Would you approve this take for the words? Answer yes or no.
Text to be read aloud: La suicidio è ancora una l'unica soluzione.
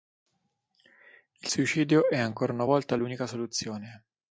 no